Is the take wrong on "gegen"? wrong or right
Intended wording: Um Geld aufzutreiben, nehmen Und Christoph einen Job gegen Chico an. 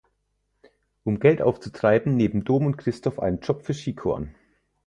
wrong